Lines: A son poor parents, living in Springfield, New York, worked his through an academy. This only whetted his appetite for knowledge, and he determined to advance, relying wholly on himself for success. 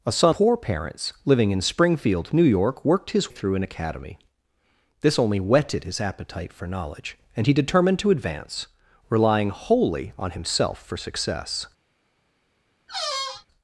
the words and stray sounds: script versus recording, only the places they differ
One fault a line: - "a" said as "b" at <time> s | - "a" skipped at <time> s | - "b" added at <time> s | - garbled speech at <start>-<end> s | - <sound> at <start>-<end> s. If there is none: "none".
- squeak at 12.9-13.5 s